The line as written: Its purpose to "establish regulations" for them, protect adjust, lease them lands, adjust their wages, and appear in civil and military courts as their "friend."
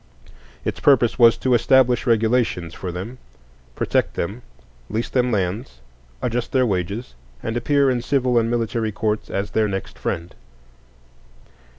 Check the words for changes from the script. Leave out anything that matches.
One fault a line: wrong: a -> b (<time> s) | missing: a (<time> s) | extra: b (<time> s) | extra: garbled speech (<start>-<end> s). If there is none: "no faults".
extra: was (1.2 s)
wrong: adjust -> them (4.2 s)
extra: next (9.6 s)